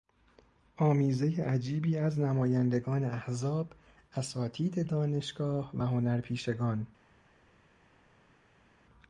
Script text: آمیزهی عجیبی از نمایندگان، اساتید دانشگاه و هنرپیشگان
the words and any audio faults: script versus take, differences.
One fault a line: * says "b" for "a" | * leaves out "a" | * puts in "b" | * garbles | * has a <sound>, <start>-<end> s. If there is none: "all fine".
* puts in "احزاب"